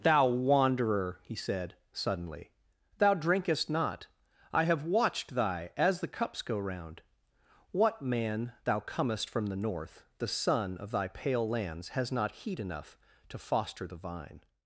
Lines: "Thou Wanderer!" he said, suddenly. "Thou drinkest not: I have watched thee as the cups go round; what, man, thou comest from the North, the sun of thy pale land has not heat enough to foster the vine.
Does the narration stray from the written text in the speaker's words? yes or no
yes